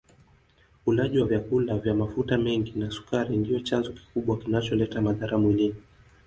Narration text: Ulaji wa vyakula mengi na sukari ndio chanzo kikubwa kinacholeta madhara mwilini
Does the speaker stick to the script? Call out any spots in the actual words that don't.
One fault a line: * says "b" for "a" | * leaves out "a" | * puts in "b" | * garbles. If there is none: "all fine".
* puts in "vya mafuta"